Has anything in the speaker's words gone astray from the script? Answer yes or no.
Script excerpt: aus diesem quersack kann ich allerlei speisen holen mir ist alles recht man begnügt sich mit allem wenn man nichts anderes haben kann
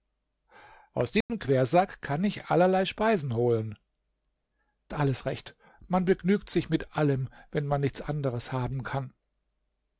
yes